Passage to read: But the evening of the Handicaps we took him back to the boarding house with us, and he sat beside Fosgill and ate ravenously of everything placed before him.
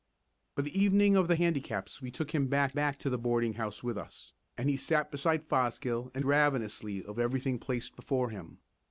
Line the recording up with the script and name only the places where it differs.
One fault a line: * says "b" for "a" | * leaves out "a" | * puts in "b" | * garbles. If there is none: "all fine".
* puts in "back"
* leaves out "ate"